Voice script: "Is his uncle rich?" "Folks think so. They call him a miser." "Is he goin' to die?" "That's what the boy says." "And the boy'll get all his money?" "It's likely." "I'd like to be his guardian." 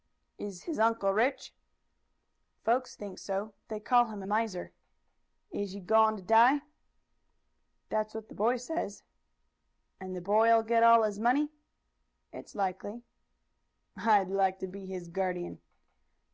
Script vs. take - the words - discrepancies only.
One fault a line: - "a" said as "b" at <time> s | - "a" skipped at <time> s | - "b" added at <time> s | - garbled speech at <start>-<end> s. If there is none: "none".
none